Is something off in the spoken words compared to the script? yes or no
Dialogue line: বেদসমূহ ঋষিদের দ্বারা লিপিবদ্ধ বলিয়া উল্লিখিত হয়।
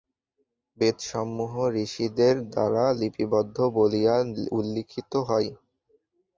no